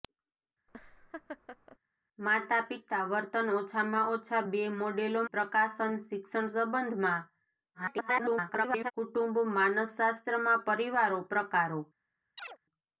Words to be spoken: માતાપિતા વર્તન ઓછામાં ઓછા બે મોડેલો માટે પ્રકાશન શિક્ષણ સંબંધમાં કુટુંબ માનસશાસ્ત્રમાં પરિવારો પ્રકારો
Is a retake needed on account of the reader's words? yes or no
yes